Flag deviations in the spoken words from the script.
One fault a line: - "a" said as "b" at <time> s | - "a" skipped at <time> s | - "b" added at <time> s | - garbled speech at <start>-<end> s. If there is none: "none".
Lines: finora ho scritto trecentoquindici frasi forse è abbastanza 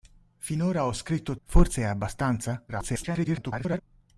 - "trecentoquindici frasi" skipped at 1.4 s
- garbled speech at 2.7-3.8 s